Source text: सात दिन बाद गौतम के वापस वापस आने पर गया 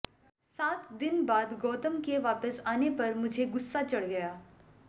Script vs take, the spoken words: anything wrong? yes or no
yes